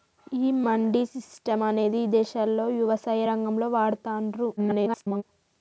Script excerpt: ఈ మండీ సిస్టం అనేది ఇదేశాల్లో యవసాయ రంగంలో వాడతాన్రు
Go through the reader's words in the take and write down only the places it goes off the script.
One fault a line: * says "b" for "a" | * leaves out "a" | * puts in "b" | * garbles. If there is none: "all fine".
* garbles